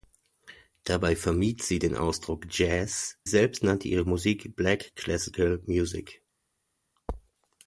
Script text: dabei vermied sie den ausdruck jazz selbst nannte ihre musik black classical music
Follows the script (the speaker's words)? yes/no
yes